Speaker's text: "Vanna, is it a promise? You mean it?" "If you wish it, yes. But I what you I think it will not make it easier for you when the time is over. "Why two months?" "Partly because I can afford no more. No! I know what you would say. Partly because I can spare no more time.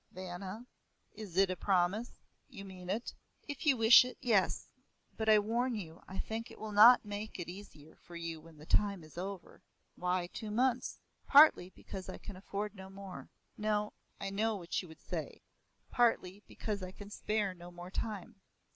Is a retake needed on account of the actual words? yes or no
yes